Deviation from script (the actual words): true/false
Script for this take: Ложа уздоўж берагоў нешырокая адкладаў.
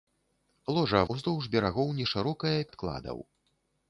false